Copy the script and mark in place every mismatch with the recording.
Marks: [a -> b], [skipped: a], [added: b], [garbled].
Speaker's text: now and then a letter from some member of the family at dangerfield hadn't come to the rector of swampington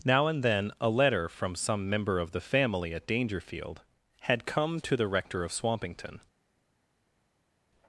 now and then a letter from some member of the family at dangerfield [hadn't -> had] come to the rector of swampington